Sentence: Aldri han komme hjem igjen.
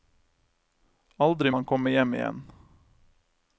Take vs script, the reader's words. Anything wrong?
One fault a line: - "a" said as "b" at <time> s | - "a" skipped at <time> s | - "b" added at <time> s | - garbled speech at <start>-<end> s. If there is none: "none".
none